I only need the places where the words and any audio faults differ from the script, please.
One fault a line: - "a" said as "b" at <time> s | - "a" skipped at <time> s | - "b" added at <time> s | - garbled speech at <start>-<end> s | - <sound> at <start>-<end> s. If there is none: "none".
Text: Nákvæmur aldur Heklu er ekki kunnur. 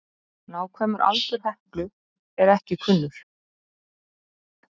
none